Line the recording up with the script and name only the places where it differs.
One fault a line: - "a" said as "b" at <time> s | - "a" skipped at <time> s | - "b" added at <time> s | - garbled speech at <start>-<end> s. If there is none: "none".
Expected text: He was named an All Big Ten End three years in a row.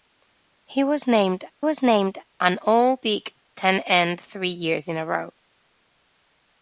- "was named" added at 1.6 s